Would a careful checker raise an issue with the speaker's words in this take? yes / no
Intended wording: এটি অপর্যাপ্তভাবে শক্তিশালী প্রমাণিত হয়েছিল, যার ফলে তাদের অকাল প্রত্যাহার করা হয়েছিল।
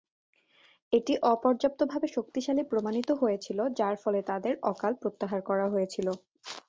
no